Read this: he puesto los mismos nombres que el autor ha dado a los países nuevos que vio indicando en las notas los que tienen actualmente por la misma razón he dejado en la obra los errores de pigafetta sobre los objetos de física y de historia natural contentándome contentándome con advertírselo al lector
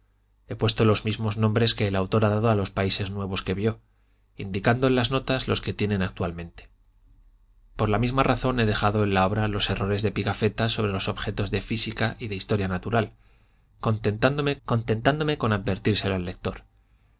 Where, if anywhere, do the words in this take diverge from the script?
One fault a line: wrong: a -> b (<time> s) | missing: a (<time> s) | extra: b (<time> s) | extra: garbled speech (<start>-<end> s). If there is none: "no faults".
no faults